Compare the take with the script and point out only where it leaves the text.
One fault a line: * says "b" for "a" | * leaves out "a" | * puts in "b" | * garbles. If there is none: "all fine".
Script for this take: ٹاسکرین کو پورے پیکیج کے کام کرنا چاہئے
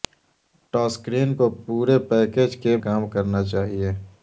all fine